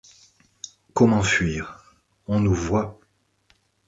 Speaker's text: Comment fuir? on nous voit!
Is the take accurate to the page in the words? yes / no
yes